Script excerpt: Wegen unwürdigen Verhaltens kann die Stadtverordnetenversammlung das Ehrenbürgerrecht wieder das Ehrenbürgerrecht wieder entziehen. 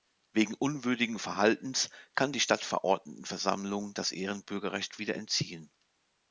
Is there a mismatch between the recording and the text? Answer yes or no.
yes